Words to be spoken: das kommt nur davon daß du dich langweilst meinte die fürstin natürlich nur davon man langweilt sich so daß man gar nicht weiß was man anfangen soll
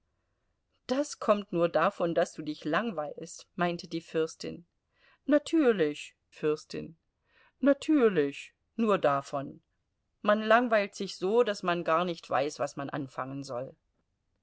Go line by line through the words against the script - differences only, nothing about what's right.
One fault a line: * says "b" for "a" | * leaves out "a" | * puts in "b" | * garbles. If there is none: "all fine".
* puts in "fürstin natürlich"